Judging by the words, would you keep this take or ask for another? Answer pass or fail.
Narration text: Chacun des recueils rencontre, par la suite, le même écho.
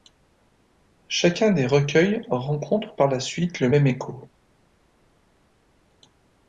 pass